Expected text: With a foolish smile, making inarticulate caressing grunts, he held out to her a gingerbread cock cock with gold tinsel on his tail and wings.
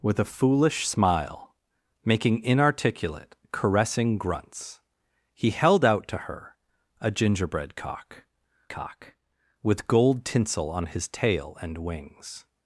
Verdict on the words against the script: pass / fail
pass